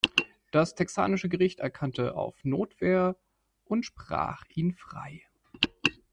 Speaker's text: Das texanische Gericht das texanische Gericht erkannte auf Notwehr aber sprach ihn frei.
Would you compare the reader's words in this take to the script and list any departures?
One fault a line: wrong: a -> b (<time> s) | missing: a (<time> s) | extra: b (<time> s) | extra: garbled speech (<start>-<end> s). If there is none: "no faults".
missing: das texanische Gericht (1.6 s)
wrong: aber -> und (3.6 s)